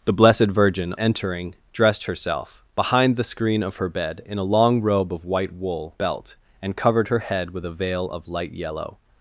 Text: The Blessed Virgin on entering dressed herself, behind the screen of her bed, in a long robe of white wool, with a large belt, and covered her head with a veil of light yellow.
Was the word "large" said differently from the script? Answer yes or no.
yes